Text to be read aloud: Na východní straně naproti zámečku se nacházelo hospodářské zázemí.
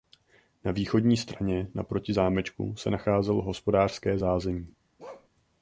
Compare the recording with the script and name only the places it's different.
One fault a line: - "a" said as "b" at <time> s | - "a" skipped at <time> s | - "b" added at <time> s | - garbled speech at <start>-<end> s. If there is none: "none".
none